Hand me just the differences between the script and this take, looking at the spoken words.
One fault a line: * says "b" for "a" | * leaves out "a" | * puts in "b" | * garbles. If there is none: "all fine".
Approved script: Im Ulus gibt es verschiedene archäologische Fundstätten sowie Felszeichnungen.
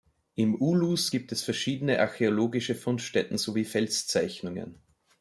all fine